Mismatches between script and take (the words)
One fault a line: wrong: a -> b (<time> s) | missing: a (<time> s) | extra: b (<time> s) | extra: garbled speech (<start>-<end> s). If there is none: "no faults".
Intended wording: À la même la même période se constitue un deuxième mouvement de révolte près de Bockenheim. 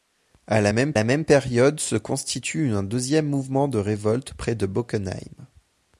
no faults